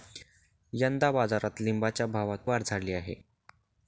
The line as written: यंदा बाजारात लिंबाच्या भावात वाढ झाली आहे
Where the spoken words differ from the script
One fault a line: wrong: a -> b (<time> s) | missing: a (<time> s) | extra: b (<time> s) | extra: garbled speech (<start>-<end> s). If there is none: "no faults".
no faults